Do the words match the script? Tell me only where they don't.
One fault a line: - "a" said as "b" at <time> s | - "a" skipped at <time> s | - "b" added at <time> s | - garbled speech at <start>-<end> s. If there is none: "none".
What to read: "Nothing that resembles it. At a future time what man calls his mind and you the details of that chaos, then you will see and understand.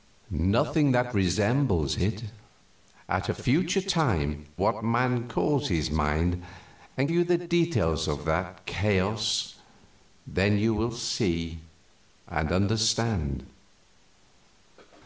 none